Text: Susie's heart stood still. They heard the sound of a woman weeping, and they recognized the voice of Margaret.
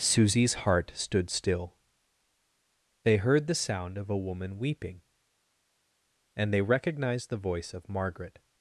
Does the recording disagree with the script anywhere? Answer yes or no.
no